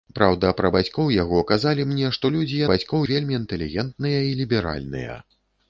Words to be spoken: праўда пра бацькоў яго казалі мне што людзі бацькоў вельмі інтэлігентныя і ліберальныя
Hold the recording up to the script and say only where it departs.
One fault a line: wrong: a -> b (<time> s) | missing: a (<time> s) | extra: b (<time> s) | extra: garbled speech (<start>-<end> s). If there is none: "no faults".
no faults